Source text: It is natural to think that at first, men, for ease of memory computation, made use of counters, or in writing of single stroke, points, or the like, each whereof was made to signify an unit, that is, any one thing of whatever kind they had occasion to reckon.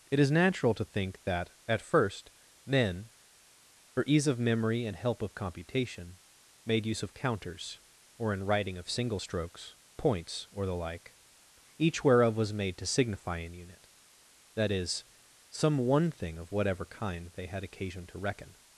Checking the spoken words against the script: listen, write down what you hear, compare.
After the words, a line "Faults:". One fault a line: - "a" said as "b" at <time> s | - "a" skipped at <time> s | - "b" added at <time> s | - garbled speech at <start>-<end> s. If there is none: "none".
It is natural to think that at first, men, for ease of memory and help of computation, made use of counters, or in writing of single strokes, points, or the like, each whereof was made to signify an unit, that is, some one thing of whatever kind they had occasion to reckon.
Faults:
- "and help of" added at 4.8 s
- "stroke" said as "strokes" at 9.2 s
- "any" said as "some" at 15.5 s